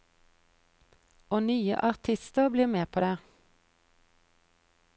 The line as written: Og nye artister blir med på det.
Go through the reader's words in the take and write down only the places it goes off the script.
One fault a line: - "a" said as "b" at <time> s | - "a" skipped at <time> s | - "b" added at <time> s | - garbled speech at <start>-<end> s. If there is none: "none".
none